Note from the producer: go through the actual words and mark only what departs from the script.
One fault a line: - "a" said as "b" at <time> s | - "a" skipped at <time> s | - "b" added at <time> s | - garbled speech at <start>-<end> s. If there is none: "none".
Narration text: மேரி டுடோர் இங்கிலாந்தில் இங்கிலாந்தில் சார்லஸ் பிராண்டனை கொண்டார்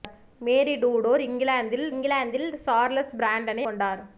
none